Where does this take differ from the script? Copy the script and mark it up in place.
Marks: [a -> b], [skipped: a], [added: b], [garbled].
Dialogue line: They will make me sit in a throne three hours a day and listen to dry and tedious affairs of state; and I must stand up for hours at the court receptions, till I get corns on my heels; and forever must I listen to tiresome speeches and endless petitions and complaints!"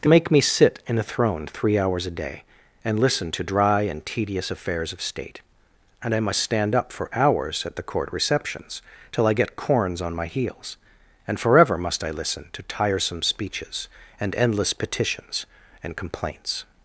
They [skipped: will] make me sit in a throne three hours a day and listen to dry and tedious affairs of state; and I must stand up for hours at the court receptions, till I get corns on my heels; and forever must I listen to tiresome speeches and endless petitions and complaints!"